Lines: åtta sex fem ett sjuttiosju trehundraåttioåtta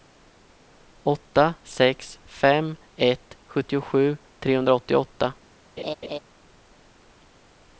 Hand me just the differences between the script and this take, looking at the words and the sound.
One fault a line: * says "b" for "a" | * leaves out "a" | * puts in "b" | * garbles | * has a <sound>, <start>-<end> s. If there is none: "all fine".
* has a laugh, 5.8-6.2 s